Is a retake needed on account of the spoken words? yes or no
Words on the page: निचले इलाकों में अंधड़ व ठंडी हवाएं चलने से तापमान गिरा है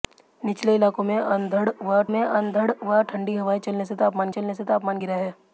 yes